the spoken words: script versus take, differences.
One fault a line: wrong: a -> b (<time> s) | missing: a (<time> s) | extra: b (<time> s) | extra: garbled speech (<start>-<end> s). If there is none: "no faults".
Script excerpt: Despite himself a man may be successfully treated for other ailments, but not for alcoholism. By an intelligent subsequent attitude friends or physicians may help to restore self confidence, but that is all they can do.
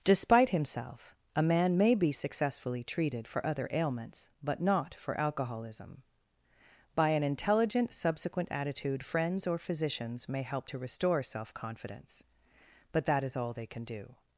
no faults